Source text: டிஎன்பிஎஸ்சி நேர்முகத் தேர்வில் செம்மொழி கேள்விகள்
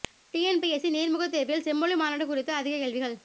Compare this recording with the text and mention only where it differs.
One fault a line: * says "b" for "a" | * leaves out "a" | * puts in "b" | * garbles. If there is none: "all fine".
* puts in "மாநாடு குறித்து அதிக"